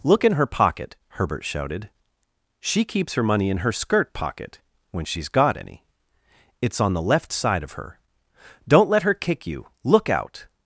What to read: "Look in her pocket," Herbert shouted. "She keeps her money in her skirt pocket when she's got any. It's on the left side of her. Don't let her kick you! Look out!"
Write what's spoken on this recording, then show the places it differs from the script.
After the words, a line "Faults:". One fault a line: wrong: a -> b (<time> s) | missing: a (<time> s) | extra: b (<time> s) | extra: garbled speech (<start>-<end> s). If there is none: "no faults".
"Look in her pocket," Herbert shouted. "She keeps her money in her skirt pocket when she's got any. It's on the left side of her. Don't let her kick you! Look out!"
Faults:
no faults